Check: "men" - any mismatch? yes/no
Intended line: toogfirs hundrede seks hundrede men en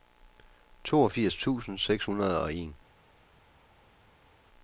yes